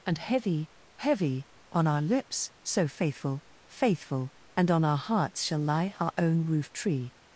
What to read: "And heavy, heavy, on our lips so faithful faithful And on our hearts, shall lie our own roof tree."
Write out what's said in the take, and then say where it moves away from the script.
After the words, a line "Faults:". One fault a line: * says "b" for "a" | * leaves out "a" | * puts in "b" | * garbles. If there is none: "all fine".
"And heavy, heavy, on our lips so faithful faithful And on our hearts, shall lie our own roof tree."
Faults:
all fine